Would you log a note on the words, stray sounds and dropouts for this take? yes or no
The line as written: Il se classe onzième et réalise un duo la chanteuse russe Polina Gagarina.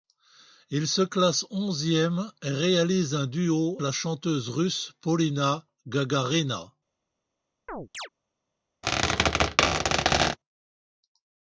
yes